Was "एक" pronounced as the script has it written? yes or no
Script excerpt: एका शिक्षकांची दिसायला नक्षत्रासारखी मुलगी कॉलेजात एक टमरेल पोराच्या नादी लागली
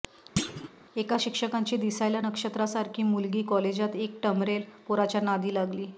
yes